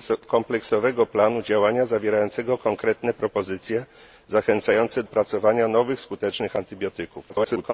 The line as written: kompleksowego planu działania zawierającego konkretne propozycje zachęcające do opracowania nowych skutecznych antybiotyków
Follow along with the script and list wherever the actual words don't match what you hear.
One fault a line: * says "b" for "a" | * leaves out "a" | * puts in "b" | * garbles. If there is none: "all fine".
* leaves out "do"
* garbles